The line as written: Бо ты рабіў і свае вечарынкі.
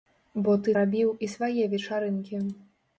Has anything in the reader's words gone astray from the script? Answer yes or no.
no